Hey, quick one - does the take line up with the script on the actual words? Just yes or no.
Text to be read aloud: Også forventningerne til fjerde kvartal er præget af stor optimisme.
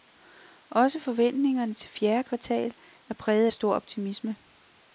yes